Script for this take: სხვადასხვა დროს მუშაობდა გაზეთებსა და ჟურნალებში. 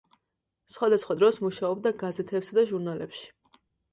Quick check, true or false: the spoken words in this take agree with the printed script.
true